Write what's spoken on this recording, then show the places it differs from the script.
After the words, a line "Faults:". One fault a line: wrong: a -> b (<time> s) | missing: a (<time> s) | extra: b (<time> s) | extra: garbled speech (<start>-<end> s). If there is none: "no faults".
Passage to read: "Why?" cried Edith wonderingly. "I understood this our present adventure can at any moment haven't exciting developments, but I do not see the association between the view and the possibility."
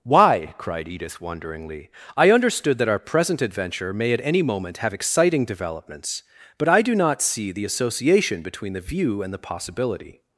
"Why?" cried Edith wonderingly. "I understood that our present adventure may at any moment have exciting developments, but I do not see the association between the view and the possibility."
Faults:
wrong: this -> that (2.8 s)
wrong: can -> may (3.9 s)
wrong: haven't -> have (4.8 s)